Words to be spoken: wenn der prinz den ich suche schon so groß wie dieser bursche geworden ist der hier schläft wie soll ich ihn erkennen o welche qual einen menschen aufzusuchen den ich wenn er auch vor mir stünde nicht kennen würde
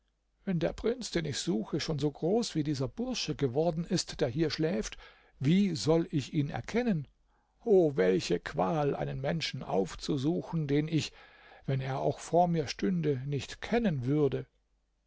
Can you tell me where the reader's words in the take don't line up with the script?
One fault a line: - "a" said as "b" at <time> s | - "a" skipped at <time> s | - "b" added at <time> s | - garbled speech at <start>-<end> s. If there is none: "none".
none